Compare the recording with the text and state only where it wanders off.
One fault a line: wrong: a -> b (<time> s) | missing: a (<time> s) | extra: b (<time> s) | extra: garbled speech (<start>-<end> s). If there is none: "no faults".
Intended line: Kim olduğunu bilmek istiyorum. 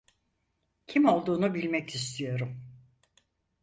no faults